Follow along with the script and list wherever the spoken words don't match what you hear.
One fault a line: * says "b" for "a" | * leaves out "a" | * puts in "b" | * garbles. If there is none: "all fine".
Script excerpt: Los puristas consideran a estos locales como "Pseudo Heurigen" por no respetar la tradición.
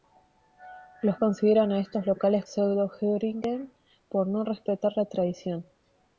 * leaves out "puristas"
* leaves out "como"